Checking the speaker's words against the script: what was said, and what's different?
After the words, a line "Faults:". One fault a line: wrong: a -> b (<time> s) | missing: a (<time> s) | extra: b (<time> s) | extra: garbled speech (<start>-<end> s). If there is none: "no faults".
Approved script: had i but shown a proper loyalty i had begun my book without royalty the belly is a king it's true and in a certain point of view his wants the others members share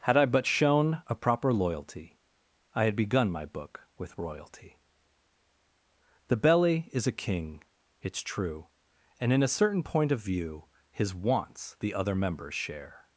had i but shown a proper loyalty i had begun my book with royalty the belly is a king it's true and in a certain point of view his wants the other members share
Faults:
wrong: without -> with (4.0 s)
wrong: others -> other (11.9 s)